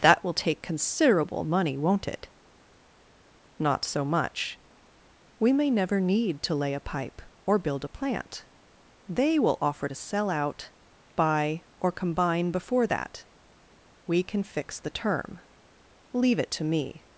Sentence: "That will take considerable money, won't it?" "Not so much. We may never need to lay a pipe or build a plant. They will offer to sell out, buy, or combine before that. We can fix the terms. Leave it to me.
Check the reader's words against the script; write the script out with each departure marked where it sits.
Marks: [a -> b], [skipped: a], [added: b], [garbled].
"That will take considerable money, won't it?" "Not so much. We may never need to lay a pipe or build a plant. They will offer to sell out, buy, or combine before that. We can fix the [terms. -> term] Leave it to me.